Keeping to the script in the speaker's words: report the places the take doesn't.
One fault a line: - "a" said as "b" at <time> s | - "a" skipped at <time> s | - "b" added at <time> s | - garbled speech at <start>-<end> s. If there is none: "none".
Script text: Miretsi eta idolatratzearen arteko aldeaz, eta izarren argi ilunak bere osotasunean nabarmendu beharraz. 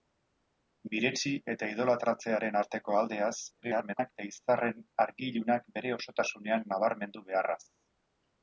- garbled speech at 3.6-4.1 s